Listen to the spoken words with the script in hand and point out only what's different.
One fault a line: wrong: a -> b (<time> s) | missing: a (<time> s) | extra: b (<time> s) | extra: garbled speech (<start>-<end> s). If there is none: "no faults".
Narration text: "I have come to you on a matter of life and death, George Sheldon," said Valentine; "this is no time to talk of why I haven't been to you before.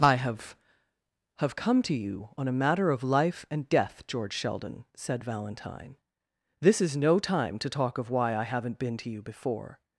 extra: have (1.4 s)